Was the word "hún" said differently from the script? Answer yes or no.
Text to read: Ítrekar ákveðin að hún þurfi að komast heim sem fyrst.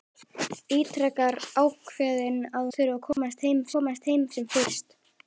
yes